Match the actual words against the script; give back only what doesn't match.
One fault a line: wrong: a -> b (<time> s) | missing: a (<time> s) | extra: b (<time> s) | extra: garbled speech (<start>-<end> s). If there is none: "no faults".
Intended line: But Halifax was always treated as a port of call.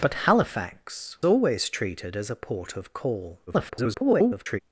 missing: was (1.2 s)
extra: garbled speech (3.5-4.6 s)